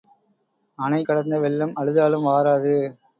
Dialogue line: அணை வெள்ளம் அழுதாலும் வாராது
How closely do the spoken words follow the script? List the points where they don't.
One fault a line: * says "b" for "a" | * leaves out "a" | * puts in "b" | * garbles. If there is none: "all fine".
* puts in "கடந்த"